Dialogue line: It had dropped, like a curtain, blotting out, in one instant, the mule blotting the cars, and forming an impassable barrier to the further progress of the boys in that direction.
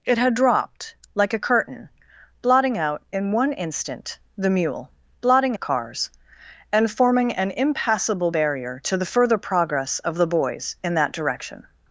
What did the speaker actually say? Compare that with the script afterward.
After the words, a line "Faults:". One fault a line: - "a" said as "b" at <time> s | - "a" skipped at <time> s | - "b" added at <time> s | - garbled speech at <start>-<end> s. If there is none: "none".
It had dropped, like a curtain, blotting out, in one instant, the mule blotting the cars, and forming an impassable barrier to the further progress of the boys in that direction.
Faults:
none